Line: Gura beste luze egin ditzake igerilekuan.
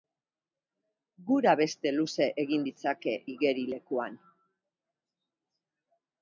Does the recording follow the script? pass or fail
pass